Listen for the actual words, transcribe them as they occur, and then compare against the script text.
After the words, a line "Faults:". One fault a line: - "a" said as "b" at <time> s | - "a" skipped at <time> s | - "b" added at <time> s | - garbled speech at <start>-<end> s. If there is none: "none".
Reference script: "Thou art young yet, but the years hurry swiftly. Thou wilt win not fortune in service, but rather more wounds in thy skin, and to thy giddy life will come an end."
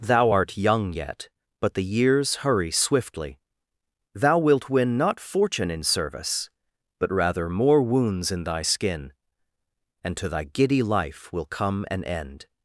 "Thou art young yet, but the years hurry swiftly. Thou wilt win not fortune in service, but rather more wounds in thy skin, and to thy giddy life will come an end."
Faults:
none